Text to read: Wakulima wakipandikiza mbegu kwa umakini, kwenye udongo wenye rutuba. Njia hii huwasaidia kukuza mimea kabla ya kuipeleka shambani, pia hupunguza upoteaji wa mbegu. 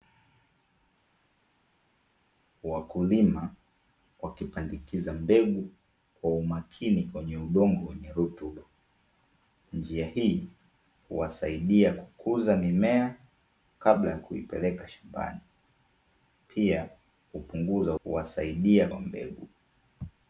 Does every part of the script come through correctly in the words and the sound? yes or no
no